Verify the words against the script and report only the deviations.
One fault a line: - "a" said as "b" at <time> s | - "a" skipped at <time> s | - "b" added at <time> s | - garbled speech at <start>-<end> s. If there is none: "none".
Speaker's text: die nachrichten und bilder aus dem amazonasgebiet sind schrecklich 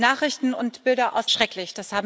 - "dem amazonasgebiet sind" skipped at 1.3 s